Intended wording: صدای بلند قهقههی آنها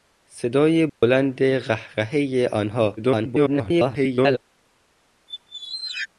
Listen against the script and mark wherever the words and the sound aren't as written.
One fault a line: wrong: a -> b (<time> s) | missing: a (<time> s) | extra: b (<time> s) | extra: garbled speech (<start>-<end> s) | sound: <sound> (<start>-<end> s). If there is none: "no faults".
sound: dropout (0.9-1.0 s)
extra: garbled speech (3.0-4.4 s)
sound: squeak (5.3-6.1 s)